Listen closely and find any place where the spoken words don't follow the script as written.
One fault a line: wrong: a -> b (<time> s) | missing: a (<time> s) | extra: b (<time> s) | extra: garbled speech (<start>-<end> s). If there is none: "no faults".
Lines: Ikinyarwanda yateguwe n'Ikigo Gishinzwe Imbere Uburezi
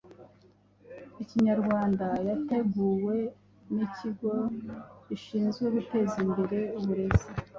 extra: Guteza (5.8 s)